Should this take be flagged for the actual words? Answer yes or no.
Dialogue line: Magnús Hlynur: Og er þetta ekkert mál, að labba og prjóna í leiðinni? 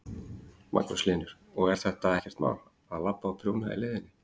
no